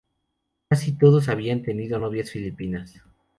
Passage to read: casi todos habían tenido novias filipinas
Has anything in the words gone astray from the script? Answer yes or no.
no